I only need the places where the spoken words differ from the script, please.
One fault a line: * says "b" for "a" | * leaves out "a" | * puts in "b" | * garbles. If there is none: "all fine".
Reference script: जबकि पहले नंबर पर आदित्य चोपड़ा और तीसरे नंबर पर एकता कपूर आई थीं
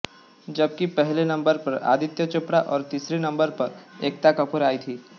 all fine